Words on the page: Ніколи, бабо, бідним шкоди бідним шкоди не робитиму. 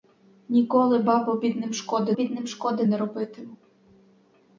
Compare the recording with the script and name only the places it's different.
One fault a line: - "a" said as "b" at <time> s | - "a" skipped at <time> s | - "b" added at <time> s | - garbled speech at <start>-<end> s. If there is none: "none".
none